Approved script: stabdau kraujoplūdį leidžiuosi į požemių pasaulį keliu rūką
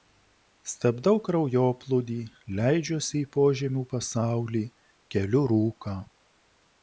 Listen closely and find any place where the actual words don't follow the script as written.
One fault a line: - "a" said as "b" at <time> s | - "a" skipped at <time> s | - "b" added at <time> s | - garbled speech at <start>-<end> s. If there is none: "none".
none